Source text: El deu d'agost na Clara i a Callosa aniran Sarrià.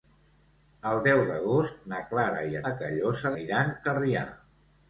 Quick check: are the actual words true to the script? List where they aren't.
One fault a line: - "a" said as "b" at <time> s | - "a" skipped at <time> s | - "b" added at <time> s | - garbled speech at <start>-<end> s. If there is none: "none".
none